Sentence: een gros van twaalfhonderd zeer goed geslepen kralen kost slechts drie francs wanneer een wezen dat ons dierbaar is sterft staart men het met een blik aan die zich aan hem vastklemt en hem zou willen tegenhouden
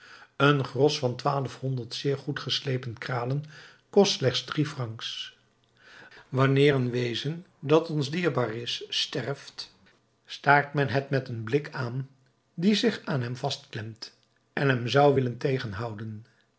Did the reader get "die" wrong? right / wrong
right